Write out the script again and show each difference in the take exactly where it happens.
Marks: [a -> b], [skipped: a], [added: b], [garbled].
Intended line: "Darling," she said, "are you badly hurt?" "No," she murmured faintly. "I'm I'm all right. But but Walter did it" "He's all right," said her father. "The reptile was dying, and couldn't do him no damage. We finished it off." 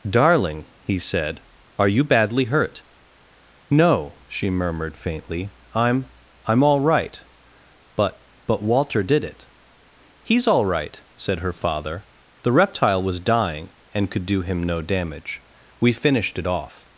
"Darling," [she -> he] said, "are you badly hurt?" "No," she murmured faintly. "I'm I'm all right. But but Walter did it" "He's all right," said her father. "The reptile was dying, and [couldn't -> could] do him no damage. We finished it off."